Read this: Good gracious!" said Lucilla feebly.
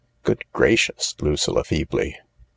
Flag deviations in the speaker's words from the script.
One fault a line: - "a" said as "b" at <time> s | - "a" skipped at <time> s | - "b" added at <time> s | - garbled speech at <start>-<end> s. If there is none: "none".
- "said" skipped at 1.1 s